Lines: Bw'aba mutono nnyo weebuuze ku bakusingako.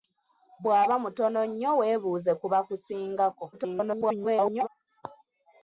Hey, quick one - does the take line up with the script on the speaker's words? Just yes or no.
no